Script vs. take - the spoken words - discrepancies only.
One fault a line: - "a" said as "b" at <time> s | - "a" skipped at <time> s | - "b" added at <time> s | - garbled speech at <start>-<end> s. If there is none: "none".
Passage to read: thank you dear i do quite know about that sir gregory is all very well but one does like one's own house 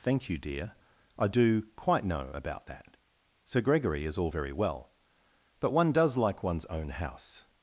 none